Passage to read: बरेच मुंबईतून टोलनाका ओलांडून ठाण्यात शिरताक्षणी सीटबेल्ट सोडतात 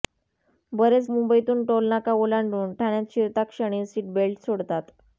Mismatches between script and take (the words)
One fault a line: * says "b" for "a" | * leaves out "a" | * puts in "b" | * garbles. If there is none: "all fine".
all fine